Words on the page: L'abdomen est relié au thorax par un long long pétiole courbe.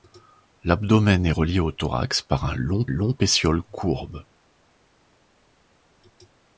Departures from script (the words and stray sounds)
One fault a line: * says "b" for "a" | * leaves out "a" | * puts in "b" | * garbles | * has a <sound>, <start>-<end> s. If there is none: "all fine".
all fine